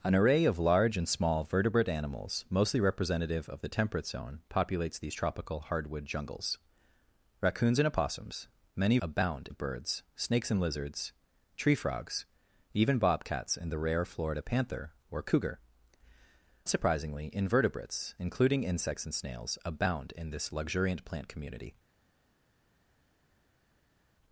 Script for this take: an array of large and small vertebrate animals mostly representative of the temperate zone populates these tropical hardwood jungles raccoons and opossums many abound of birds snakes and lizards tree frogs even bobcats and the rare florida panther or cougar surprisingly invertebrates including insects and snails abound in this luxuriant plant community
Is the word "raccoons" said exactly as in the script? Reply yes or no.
yes